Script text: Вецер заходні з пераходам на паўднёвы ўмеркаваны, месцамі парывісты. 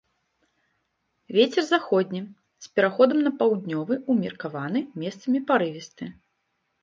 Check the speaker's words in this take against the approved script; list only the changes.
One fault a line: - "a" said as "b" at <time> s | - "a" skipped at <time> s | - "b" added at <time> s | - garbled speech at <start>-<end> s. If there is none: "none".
none